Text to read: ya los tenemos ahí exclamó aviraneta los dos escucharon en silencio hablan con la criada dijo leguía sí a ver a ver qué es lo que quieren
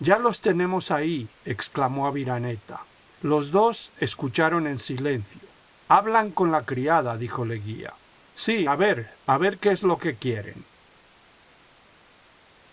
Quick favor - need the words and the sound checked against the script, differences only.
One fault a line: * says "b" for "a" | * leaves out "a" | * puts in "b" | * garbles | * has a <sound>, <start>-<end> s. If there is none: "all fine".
all fine